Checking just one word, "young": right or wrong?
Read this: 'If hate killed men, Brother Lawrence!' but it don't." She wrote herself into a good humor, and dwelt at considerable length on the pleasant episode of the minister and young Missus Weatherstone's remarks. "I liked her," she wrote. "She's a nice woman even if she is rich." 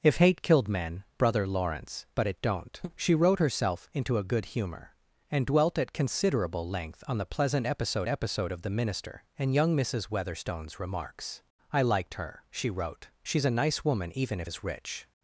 right